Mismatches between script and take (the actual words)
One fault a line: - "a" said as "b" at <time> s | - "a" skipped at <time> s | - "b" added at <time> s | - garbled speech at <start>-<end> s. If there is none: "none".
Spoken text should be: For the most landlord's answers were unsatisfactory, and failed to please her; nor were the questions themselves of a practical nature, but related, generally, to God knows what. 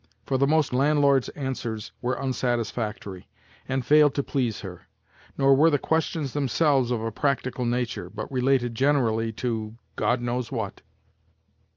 none